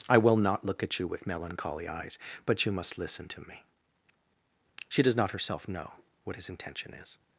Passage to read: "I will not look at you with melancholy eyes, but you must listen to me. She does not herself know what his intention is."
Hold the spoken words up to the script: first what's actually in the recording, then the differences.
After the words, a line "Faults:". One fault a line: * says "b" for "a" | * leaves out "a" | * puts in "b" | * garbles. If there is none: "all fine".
"I will not look at you with melancholy eyes, but you must listen to me. She does not herself know what his intention is."
Faults:
all fine